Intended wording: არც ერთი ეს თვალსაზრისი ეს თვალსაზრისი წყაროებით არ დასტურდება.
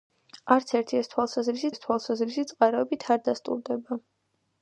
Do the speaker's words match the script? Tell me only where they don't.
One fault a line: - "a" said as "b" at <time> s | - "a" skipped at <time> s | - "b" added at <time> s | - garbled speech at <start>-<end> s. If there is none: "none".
none